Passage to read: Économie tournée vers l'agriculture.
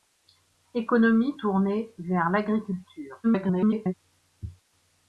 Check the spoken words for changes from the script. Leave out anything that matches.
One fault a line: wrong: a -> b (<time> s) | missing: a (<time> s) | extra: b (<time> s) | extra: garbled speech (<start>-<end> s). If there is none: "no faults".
extra: garbled speech (3.2-3.9 s)